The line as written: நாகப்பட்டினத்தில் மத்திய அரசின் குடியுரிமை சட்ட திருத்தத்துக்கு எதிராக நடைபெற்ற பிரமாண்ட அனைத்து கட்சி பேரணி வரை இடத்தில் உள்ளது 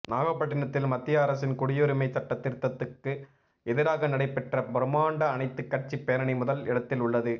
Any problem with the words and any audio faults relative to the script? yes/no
yes